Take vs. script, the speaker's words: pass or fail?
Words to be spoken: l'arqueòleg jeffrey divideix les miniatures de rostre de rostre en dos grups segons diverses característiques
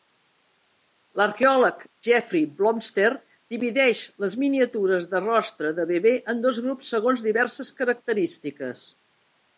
fail